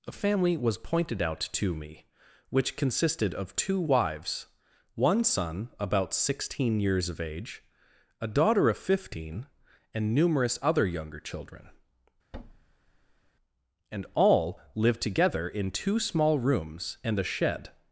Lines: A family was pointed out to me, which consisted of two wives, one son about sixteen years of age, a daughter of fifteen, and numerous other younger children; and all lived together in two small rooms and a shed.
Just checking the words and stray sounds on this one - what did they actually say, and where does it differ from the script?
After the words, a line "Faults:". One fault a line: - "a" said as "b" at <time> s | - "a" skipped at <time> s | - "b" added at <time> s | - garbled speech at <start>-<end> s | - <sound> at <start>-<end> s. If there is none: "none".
A family was pointed out to me, which consisted of two wives, one son about sixteen years of age, a daughter of fifteen, and numerous other younger children; and all lived together in two small rooms and a shed.
Faults:
- thud at 12.3-13.3 s